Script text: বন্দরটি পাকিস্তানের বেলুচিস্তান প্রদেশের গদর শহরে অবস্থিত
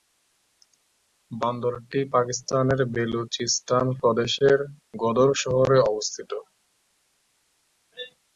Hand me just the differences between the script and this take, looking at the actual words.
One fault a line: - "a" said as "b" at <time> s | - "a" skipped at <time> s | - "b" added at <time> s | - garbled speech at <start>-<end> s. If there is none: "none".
none